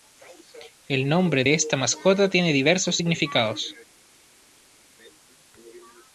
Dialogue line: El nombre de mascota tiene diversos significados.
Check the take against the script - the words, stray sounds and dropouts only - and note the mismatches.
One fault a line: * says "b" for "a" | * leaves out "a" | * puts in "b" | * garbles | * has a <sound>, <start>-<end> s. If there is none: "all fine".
* puts in "esta"